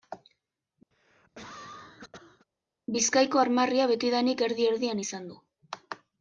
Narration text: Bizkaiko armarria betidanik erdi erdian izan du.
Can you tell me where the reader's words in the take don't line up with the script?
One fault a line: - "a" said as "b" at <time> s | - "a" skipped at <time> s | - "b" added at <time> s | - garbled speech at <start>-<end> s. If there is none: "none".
none